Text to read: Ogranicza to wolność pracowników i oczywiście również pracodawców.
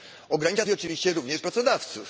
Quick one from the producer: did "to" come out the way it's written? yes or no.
no